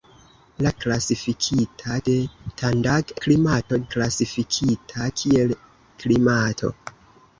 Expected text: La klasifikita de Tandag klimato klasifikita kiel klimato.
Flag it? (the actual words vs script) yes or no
no